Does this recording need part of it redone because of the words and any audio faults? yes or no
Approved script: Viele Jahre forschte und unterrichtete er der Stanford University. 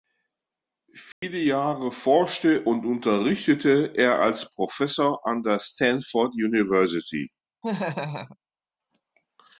yes